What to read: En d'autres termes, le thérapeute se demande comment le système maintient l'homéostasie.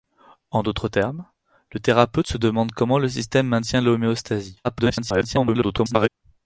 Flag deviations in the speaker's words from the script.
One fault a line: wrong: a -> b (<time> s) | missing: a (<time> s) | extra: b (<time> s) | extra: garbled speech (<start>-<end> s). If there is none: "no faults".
extra: garbled speech (4.6-6.1 s)